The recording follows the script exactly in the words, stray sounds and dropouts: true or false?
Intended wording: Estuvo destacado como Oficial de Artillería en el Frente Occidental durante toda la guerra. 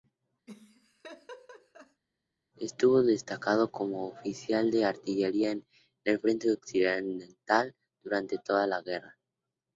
false